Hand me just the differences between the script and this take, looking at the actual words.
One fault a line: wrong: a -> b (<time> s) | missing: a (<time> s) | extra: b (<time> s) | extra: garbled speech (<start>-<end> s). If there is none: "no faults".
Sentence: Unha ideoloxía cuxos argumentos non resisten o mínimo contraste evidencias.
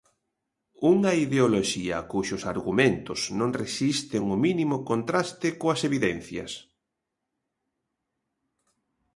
extra: coas (5.6 s)